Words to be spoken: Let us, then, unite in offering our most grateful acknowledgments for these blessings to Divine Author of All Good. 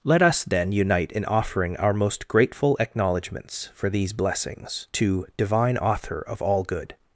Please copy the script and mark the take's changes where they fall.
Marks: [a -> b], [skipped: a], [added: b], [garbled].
Let us, then, unite in offering our most grateful acknowledgments for these blessings to Divine Author of All Good.